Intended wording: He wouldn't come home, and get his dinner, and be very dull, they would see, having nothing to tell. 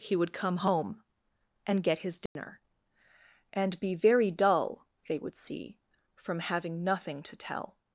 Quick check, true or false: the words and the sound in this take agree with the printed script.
false